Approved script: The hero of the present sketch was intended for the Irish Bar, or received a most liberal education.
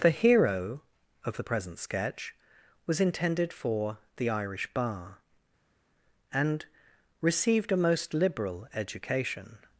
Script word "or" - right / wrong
wrong